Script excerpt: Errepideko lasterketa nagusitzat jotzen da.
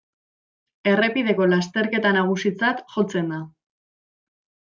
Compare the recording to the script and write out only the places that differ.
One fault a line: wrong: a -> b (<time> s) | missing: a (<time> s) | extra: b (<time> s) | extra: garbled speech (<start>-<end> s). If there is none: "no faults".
no faults